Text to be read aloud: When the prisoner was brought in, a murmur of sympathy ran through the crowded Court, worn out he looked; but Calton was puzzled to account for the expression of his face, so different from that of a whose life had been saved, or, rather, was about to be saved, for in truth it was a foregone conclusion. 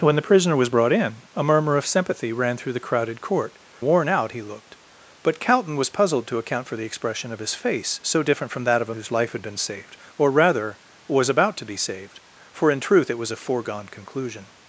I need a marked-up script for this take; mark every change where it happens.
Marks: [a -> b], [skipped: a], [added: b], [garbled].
When the prisoner was brought in, a murmur of sympathy ran through the crowded Court, worn out he looked; but Calton was puzzled to account for the expression of his face, so different from that of a whose life had been saved, or, rather, was about to be saved, for in truth it was a foregone conclusion.